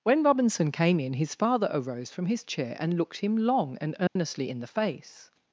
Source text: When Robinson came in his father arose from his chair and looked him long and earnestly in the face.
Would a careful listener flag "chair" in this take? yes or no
no